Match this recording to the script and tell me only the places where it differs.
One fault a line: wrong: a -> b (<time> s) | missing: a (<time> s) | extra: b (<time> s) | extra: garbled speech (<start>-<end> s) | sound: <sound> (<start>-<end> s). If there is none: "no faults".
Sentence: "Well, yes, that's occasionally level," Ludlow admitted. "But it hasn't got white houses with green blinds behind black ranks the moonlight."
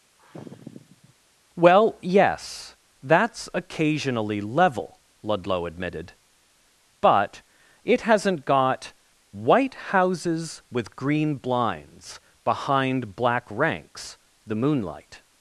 sound: sigh (0.2-1.1 s)